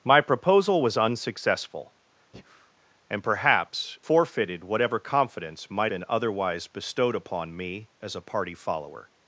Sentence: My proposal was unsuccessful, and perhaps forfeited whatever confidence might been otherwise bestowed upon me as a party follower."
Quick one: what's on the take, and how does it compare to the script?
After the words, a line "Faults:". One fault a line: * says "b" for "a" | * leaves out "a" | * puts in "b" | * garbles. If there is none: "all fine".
My proposal was unsuccessful, and perhaps forfeited whatever confidence might been otherwise bestowed upon me as a party follower."
Faults:
all fine